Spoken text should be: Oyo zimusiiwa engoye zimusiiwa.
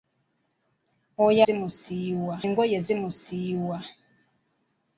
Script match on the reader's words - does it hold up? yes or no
yes